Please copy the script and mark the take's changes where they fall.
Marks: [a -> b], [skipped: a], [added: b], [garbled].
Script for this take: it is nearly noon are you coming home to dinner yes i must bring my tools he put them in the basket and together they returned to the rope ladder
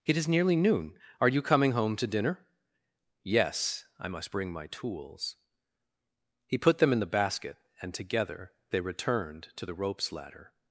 it is nearly noon are you coming home to dinner yes i must bring my tools he put them in the basket and together they returned to the [rope -> ropes] ladder